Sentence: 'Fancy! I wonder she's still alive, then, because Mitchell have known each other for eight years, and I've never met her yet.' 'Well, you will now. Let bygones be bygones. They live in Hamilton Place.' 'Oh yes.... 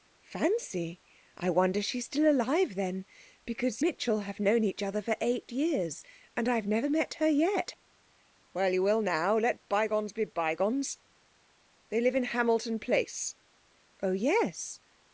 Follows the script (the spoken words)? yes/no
yes